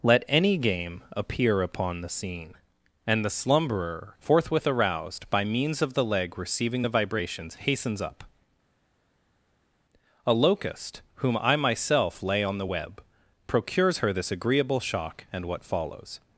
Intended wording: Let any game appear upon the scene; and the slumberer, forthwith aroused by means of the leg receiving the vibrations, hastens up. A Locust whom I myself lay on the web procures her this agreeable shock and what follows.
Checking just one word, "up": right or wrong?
right